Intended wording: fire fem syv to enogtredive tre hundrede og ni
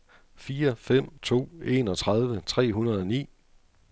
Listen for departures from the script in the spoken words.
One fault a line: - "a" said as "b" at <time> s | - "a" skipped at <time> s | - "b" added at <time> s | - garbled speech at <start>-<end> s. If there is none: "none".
- "syv" skipped at 1.2 s